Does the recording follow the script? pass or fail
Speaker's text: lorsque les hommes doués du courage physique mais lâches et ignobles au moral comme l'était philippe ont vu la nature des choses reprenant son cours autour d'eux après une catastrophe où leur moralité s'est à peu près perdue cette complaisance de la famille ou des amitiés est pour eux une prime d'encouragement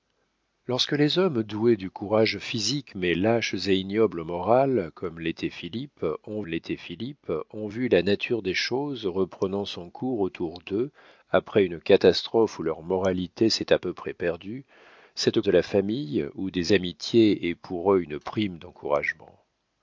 fail